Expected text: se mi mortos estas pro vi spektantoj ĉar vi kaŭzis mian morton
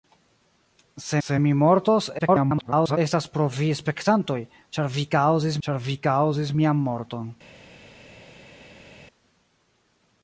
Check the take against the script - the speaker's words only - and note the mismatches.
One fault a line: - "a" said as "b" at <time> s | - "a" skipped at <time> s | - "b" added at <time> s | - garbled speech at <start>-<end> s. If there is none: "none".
- "se" added at 1.2 s
- garbled speech at 2.2-3.0 s
- "ĉar vi kaŭzis" added at 5.7 s